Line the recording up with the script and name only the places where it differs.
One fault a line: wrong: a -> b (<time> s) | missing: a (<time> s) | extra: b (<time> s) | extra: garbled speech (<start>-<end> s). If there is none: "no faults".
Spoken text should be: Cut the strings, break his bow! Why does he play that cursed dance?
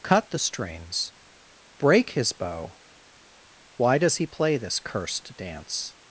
wrong: that -> this (4.6 s)